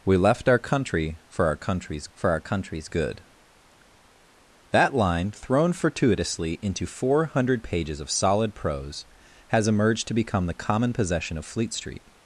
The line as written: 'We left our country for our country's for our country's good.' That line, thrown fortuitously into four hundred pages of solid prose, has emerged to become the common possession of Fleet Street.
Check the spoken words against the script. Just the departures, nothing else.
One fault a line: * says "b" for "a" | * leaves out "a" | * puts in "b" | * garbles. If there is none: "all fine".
all fine